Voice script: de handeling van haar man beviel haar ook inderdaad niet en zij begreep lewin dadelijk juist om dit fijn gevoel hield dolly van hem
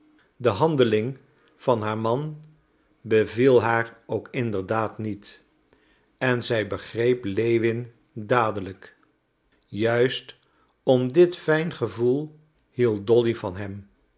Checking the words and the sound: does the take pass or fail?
pass